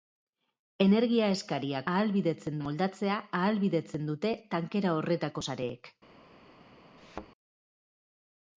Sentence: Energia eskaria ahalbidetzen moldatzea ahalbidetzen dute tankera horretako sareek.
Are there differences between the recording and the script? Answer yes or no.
no